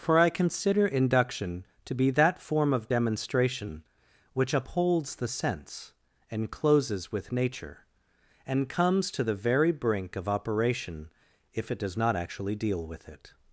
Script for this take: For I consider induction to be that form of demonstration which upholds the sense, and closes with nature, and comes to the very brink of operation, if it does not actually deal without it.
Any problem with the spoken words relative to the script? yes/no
yes